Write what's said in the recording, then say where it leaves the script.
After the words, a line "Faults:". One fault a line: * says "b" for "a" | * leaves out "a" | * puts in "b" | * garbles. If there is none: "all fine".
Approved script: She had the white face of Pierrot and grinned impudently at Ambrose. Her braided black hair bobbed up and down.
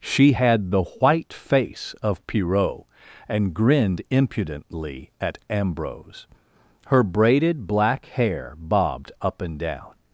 She had the white face of Pierrot and grinned impudently at Ambrose. Her braided black hair bobbed up and down.
Faults:
all fine